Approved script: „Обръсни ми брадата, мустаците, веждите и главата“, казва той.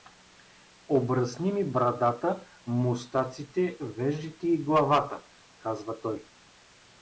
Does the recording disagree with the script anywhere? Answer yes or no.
no